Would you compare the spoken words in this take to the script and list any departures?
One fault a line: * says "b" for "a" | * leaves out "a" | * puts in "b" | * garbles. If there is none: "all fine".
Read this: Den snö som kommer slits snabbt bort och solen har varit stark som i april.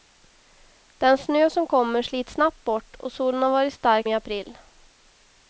* leaves out "som"